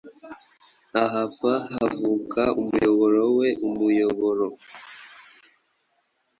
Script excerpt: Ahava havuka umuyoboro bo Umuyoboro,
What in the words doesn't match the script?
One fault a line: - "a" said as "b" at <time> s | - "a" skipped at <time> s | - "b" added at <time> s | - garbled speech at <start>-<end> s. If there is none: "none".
- "bo" said as "we" at 3.4 s